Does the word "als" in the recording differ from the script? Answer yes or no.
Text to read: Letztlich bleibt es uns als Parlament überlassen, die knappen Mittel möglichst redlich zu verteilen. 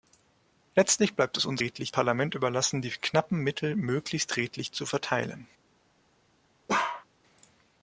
yes